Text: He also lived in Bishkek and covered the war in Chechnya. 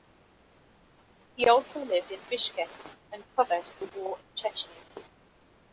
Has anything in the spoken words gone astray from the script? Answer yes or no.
no